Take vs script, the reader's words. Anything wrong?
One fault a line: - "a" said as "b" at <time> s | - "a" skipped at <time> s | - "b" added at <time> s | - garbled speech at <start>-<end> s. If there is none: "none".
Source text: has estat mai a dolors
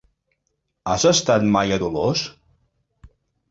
none